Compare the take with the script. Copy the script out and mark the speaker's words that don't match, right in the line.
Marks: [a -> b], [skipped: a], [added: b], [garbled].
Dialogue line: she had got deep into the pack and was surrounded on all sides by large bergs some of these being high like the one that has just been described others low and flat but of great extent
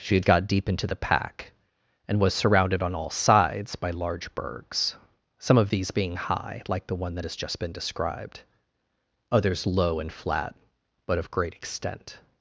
she had got deep into the pack and was surrounded on all sides by large bergs some of these being high like the one that has just been described others low and flat but of great extent